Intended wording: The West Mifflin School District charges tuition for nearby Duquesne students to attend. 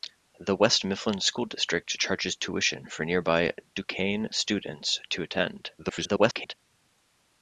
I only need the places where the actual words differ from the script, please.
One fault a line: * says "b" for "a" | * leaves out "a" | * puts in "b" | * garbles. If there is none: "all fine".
* garbles